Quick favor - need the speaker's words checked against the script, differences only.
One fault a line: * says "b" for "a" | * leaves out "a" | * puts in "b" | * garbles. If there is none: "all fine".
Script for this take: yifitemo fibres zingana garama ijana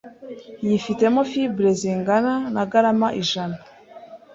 * puts in "na"